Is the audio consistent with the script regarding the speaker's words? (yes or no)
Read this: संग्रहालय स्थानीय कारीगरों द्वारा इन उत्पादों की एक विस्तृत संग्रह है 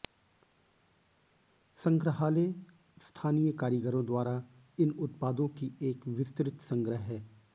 yes